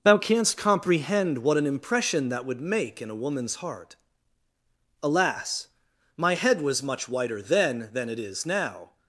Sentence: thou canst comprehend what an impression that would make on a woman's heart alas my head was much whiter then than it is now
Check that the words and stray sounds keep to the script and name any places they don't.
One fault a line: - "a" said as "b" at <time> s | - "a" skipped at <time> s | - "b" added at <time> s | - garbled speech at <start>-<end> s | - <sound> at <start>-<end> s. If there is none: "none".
- "on" said as "in" at 3.0 s